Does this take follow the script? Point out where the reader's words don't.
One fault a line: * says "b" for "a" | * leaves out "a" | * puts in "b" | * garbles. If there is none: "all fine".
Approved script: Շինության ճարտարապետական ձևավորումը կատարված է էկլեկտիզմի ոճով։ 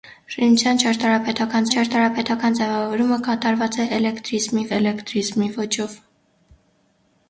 * puts in "ճարտարապետական"
* puts in "էկլեկտիզմի"